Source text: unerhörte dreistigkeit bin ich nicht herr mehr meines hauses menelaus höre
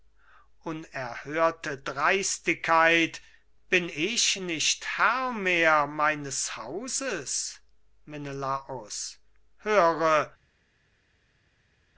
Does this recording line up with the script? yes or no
yes